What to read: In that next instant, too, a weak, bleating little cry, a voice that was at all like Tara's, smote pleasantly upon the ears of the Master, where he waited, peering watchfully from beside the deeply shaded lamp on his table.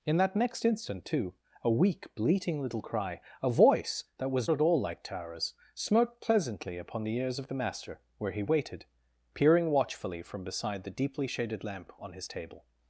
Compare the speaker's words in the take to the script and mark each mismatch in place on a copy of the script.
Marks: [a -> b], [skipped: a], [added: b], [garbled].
In that next instant, too, a weak, bleating little cry, a voice that was at all like Tara's, smote pleasantly upon the ears of the Master, where he waited, peering watchfully from beside the deeply shaded lamp on his table.